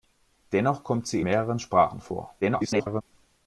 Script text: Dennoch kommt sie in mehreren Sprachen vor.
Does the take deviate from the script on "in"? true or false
true